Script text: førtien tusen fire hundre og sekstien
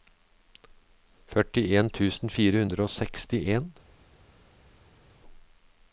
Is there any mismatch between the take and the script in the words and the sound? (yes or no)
no